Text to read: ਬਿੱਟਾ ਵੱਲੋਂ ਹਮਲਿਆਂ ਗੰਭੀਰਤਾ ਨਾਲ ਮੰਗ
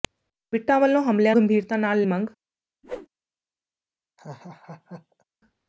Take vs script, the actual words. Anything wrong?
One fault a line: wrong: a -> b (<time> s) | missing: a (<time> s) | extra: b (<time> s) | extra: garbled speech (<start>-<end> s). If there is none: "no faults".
no faults